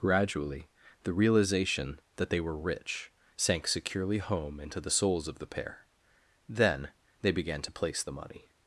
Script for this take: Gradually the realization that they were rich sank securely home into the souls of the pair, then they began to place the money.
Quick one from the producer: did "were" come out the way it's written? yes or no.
yes